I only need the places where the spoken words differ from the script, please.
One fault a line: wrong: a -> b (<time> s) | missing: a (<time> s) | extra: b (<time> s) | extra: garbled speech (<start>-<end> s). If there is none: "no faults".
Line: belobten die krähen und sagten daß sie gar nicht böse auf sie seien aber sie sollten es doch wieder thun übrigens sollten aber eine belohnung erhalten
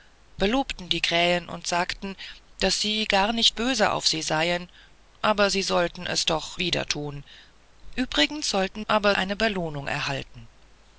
no faults